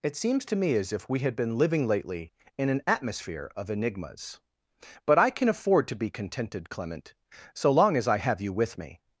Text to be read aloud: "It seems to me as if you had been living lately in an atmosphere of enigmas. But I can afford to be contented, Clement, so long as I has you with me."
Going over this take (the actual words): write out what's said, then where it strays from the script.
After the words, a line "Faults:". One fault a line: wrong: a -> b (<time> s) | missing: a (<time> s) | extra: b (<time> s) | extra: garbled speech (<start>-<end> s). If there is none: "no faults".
"It seems to me as if we had been living lately in an atmosphere of enigmas. But I can afford to be contented, Clement, so long as I have you with me."
Faults:
wrong: you -> we (1.1 s)
wrong: has -> have (8.2 s)